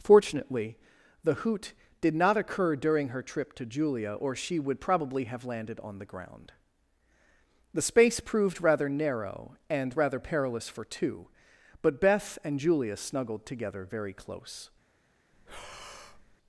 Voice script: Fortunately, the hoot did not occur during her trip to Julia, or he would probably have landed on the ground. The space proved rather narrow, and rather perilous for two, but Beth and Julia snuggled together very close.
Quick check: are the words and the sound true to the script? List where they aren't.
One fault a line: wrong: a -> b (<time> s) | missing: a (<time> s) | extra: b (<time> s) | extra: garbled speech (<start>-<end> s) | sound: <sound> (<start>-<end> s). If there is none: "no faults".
wrong: he -> she (4.3 s)
sound: breath (15.3-16.4 s)